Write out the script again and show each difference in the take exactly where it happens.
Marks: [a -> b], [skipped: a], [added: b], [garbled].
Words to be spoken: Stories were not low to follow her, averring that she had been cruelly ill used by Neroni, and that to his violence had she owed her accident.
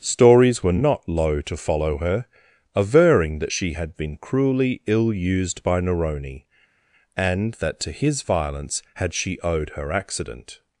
Stories were not low to follow her, averring that she had been cruelly ill used by Neroni, and that to his violence had she owed her accident.